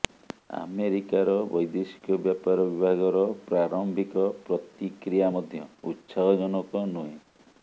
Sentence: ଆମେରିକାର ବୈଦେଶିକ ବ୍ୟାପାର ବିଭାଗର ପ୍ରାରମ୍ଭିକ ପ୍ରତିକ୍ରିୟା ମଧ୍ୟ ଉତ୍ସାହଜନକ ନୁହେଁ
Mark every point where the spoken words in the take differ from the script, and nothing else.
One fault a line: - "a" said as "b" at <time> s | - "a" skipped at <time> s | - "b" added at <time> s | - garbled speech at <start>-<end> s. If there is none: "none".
none